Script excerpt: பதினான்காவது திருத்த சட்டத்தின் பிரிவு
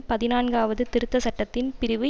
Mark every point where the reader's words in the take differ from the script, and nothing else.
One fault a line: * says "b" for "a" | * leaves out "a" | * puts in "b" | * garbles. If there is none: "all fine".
all fine